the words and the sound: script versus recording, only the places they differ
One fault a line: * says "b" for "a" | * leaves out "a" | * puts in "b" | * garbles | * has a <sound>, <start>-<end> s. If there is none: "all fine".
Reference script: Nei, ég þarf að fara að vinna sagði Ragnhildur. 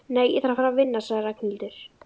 all fine